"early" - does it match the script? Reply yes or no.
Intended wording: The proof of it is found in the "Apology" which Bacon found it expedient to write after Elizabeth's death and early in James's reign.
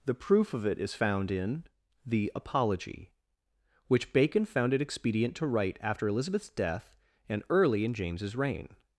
yes